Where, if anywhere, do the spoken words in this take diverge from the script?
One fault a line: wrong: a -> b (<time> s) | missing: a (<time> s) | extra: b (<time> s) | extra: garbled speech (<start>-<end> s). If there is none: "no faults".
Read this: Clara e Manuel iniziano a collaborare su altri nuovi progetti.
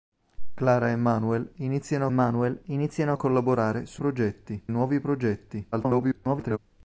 extra: Manuel iniziano (2.1 s)
wrong: altri -> progetti (4.0 s)
extra: garbled speech (5.7-6.6 s)